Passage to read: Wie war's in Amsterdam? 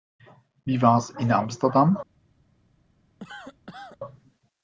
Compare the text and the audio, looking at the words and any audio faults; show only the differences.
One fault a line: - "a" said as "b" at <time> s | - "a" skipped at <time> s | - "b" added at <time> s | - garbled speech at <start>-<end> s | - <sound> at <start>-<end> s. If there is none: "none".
- cough at 3.2-4.0 s